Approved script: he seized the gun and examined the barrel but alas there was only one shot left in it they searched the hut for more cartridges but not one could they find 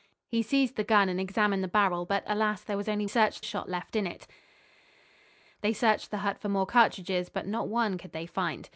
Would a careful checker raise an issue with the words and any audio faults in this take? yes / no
yes